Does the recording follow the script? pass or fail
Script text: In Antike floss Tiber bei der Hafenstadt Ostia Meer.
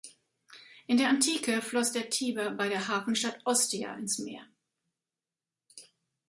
fail